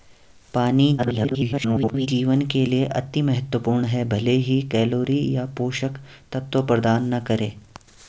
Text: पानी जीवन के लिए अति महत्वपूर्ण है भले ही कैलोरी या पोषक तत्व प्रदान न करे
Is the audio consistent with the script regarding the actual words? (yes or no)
no